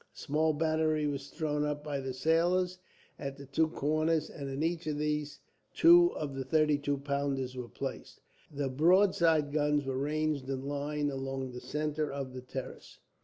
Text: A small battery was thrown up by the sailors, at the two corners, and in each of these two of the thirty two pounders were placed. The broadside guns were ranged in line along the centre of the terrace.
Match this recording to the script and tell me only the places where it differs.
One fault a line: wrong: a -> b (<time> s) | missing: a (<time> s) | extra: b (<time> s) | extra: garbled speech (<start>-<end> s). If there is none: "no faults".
no faults